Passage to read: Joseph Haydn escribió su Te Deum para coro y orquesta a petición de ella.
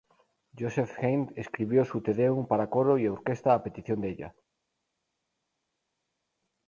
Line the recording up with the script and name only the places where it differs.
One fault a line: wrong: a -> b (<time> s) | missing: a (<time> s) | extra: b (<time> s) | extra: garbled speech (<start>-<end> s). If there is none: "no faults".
no faults